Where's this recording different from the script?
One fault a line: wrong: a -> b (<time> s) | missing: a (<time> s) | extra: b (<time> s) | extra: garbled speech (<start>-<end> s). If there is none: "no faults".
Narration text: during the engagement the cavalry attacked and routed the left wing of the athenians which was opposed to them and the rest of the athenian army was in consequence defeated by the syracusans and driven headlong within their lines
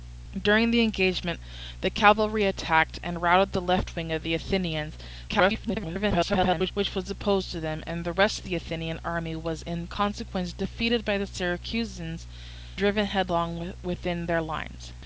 extra: garbled speech (5.3-6.7 s)
missing: and (12.3 s)